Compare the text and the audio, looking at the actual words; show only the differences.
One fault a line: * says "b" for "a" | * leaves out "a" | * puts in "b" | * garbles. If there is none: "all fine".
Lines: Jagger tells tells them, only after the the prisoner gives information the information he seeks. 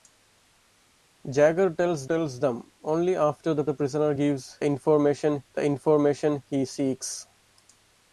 all fine